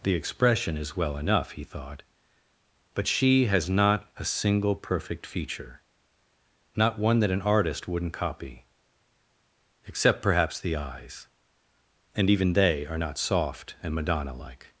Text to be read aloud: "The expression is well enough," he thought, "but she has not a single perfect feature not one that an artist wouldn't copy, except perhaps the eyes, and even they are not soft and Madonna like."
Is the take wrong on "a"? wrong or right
right